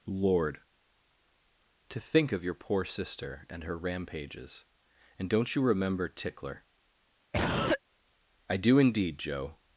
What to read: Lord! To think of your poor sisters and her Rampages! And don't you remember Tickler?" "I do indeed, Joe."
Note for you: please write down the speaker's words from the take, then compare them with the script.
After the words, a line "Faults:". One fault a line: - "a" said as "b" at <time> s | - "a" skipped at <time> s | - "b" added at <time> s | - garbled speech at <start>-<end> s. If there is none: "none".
Lord! To think of your poor sister and her Rampages! And don't you remember Tickler?" "I do indeed, Joe."
Faults:
- "sisters" said as "sister" at 2.9 s